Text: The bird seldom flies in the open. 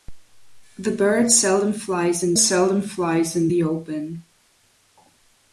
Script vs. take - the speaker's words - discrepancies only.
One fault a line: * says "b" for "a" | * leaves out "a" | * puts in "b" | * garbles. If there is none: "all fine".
* puts in "seldom flies in"